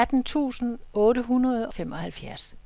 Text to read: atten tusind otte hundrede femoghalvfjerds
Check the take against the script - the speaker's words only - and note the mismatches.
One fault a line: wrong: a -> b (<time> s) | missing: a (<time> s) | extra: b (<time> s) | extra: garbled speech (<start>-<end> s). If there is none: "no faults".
no faults